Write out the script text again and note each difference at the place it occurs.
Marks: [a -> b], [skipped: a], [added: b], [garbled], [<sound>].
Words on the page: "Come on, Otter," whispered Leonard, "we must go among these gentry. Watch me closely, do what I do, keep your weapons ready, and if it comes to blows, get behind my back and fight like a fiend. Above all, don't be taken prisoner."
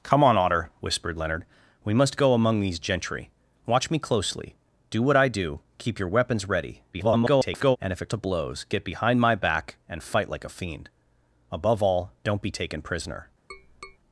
"Come on, Otter," whispered Leonard, "we must go among these gentry. Watch me closely, do what I do, keep your weapons ready, [garbled] and if it [skipped: comes] to blows, get behind my back and fight like a fiend. Above all, don't be taken prisoner." [tap]